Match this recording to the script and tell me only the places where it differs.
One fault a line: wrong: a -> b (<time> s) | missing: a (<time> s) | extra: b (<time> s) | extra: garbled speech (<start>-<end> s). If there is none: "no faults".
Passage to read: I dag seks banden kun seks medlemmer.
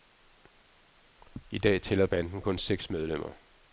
wrong: seks -> tæller (1.8 s)